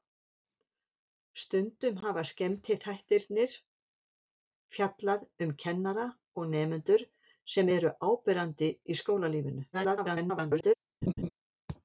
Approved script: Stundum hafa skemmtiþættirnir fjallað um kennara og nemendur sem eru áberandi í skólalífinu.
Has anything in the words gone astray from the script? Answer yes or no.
yes